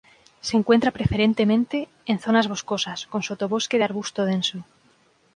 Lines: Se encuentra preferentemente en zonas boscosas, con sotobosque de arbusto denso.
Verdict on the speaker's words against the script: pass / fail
pass